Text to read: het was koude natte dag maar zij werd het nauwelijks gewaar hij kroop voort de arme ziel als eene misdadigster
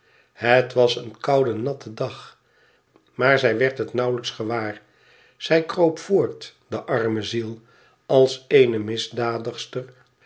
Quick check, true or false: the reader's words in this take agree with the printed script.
false